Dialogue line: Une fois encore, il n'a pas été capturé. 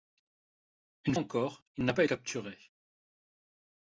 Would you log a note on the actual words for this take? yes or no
yes